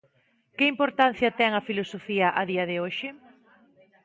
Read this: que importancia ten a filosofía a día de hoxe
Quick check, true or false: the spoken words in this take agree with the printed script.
true